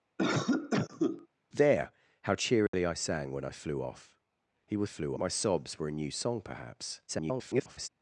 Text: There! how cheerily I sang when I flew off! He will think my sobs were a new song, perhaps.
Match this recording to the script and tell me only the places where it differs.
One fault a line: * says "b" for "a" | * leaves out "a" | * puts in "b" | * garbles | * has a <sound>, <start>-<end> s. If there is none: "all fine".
* has a cough, 0.2-1.3 s
* has a dropout, 2.7-2.7 s
* says "flew" for "think"
* garbles